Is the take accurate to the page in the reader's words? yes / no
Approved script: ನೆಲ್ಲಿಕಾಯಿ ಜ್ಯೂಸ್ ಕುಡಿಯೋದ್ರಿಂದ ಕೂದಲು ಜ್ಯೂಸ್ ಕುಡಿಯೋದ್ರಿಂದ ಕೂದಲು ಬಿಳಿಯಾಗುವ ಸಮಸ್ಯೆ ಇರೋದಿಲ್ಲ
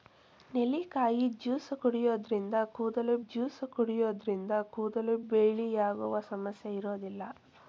yes